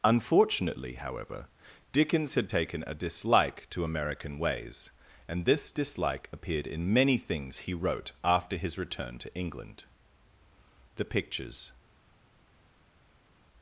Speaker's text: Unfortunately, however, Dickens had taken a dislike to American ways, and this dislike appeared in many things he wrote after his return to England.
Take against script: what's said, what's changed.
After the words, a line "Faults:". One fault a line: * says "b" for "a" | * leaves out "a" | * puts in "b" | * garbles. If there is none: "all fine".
Unfortunately, however, Dickens had taken a dislike to American ways, and this dislike appeared in many things he wrote after his return to England. The pictures
Faults:
* puts in "The pictures"